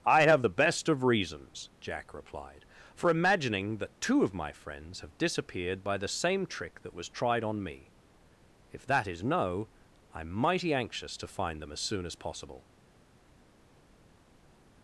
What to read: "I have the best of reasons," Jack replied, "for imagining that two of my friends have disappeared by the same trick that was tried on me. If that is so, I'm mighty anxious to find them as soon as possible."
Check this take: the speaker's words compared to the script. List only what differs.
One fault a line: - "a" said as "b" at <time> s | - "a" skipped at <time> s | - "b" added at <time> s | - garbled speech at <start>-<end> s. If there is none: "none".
- "so" said as "no" at 9.2 s